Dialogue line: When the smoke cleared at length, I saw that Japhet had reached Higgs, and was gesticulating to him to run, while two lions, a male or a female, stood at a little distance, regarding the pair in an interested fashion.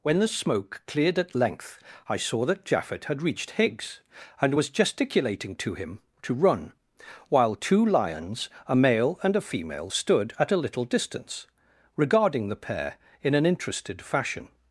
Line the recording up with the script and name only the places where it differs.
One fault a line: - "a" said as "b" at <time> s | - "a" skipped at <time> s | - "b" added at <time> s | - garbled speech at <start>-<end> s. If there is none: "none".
- "or" said as "and" at 9.2 s